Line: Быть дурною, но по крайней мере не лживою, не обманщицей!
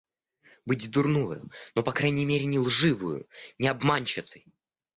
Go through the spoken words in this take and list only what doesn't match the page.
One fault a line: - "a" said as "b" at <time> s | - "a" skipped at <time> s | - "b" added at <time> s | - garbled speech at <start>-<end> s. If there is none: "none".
none